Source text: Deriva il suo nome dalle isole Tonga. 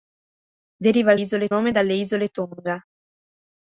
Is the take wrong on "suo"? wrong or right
wrong